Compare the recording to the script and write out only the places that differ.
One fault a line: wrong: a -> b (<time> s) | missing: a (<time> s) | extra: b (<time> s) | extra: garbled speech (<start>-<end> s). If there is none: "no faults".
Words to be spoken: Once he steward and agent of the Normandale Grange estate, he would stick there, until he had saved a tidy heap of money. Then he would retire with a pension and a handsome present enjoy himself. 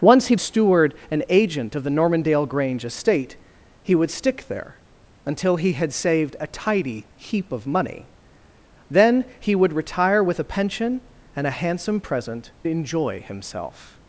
no faults